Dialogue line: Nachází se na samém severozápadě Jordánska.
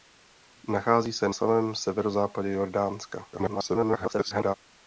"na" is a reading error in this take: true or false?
true